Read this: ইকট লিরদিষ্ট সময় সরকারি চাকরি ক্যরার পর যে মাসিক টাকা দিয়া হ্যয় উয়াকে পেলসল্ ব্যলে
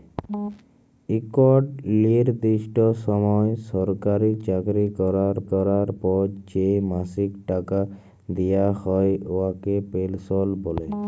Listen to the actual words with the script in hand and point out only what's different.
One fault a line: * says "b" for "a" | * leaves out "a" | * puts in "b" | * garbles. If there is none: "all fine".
* puts in "ক্যরার"